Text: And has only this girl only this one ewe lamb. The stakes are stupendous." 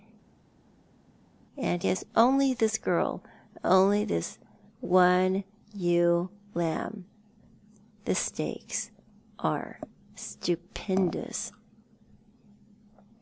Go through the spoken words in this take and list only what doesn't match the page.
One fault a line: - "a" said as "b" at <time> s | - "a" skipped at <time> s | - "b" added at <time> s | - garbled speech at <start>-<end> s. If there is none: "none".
none